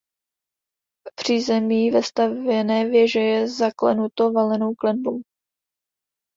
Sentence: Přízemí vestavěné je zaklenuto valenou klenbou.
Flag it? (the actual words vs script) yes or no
yes